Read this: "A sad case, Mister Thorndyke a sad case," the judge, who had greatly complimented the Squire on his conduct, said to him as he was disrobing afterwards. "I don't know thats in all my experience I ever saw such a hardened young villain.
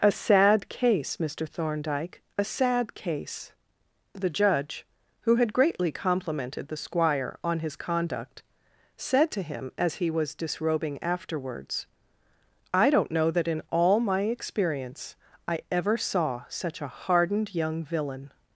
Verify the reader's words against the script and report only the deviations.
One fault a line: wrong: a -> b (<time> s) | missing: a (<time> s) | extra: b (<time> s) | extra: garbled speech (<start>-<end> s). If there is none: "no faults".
wrong: thats -> that (13.3 s)